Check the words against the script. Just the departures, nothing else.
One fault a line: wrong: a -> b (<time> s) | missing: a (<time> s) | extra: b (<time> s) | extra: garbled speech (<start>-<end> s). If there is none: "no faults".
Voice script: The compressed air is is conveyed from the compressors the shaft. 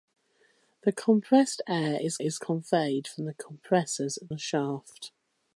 no faults